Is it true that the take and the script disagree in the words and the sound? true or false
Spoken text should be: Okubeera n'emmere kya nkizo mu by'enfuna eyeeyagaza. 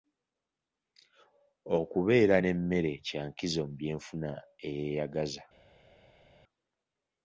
false